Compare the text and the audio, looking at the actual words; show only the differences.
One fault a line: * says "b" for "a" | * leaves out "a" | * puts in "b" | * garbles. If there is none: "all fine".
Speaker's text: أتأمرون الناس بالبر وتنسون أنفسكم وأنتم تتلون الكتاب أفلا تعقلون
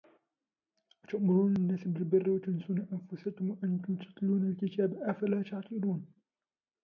all fine